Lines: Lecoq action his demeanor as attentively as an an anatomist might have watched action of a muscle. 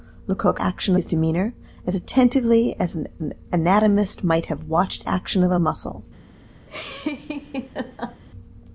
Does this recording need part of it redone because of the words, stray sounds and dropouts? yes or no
yes